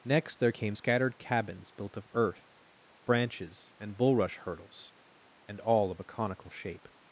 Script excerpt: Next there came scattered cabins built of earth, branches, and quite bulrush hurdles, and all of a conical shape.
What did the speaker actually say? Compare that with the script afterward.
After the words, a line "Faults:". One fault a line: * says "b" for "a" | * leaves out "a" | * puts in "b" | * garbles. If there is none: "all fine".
Next there came scattered cabins built of earth, branches, and bulrush hurdles, and all of a conical shape.
Faults:
* leaves out "quite"